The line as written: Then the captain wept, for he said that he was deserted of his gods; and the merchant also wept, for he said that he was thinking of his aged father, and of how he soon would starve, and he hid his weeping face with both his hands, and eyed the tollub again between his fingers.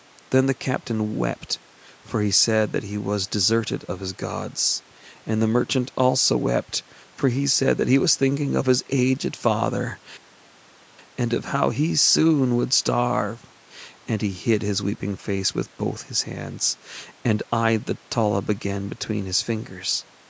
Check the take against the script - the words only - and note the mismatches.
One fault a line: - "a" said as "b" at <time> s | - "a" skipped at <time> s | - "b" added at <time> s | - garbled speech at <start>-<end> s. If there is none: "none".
none